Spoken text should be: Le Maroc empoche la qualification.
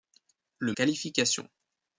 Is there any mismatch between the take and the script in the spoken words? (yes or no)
yes